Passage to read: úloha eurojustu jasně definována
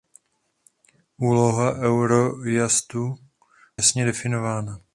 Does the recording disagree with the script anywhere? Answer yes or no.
no